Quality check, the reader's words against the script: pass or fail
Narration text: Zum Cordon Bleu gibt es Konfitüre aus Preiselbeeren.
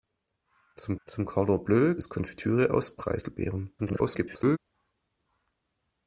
fail